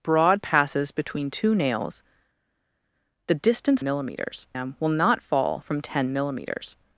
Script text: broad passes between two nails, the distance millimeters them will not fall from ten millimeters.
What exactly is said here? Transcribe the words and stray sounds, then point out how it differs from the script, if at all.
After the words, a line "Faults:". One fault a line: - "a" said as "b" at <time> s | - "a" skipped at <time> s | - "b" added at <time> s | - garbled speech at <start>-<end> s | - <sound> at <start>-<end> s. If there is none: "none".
broad passes between two nails, the distance millimeters them will not fall from ten millimeters.
Faults:
none